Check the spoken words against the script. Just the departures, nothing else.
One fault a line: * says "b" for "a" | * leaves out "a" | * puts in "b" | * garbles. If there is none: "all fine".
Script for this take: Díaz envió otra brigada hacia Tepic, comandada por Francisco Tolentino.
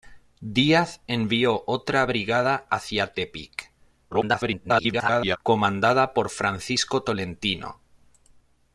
* garbles